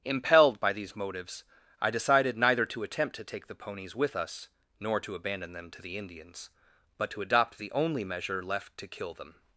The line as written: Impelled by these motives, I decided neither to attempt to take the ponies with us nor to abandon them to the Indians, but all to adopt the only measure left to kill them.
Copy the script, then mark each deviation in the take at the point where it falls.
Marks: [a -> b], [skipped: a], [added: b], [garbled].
Impelled by these motives, I decided neither to attempt to take the ponies with us nor to abandon them to the Indians, but [skipped: all] to adopt the only measure left to kill them.